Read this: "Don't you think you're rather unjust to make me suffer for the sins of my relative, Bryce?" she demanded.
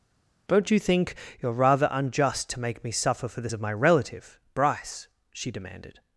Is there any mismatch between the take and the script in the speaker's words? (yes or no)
yes